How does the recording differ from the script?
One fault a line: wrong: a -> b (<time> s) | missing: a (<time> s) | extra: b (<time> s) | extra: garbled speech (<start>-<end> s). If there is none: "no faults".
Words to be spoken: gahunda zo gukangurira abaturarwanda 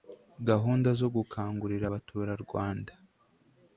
no faults